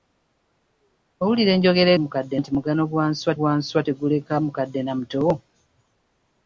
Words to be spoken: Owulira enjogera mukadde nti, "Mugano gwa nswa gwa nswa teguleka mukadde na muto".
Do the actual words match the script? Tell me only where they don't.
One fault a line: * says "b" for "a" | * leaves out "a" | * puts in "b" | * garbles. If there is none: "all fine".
all fine